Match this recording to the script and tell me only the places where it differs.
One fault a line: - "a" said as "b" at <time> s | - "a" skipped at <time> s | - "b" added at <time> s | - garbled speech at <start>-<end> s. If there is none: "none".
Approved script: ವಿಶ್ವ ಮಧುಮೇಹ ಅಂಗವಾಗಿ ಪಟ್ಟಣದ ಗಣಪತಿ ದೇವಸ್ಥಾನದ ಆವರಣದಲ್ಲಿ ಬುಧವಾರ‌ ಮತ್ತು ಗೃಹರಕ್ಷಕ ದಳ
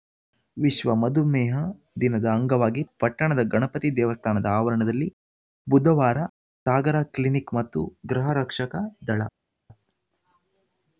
- "ದಿನದ" added at 2.0 s
- "ಸಾಗರ ಕ್ಲಿನಿಕ್" added at 6.7 s